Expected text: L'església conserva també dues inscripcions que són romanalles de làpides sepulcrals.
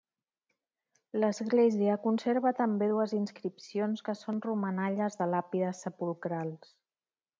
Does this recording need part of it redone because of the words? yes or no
no